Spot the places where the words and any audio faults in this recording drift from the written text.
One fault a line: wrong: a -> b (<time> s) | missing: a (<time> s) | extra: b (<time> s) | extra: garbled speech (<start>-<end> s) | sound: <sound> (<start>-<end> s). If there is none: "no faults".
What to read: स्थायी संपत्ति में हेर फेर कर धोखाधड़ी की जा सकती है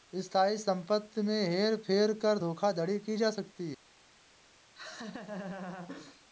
sound: laugh (4.7-6.2 s)